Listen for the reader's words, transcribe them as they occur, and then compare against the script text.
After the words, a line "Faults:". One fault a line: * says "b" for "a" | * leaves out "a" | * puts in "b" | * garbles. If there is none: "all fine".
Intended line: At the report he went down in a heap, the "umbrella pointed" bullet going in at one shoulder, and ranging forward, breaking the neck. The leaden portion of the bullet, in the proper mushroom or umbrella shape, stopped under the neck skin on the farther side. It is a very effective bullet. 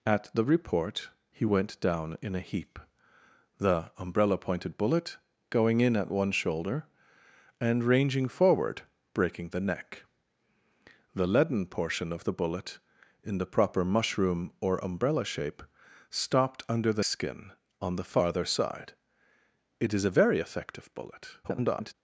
At the report he went down in a heap, the "umbrella pointed" bullet going in at one shoulder, and ranging forward, breaking the neck. The leaden portion of the bullet, in the proper mushroom or umbrella shape, stopped under the skin on the farther side. It is a very effective bullet. [garbled]
Faults:
* leaves out "neck"
* garbles